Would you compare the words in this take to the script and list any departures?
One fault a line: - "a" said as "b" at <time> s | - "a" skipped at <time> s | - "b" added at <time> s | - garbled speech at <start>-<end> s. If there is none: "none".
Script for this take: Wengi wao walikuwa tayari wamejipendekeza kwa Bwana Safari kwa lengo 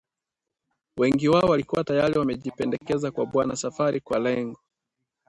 none